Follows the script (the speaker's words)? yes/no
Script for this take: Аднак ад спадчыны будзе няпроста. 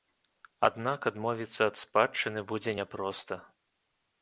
no